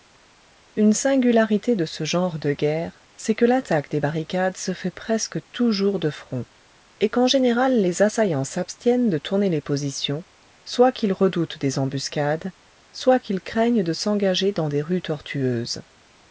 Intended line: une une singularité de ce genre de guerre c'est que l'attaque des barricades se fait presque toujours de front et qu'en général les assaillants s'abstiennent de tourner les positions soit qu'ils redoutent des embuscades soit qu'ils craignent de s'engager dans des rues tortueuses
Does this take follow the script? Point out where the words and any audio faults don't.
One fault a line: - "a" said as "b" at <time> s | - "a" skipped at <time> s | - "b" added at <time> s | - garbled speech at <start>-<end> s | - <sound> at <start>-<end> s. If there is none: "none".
- "une" skipped at 0.9 s